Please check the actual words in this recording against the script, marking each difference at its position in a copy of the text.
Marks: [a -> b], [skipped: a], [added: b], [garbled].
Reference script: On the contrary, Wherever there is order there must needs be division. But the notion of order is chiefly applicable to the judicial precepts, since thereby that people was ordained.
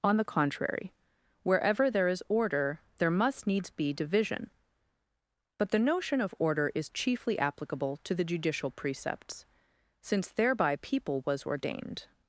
On the contrary, Wherever there is order there must needs be division. But the notion of order is chiefly applicable to the judicial precepts, since thereby [skipped: that] people was ordained.